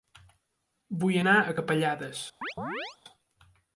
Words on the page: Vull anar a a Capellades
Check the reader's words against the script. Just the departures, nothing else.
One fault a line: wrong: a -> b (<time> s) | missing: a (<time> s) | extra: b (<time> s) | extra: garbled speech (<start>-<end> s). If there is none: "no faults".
missing: a (1.6 s)